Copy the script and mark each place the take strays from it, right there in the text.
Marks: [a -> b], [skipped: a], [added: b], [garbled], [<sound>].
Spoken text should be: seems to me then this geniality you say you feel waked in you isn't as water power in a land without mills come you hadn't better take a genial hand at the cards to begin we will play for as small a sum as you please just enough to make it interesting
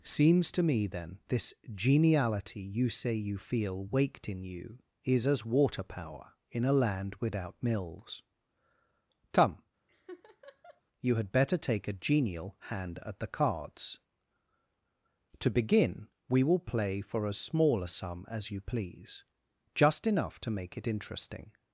seems to me then this geniality you say you feel waked in you [isn't -> is] as water power in a land without mills come [laugh] you [hadn't -> had] better take a genial hand at the cards to begin we will play for as small a sum as you please just enough to make it interesting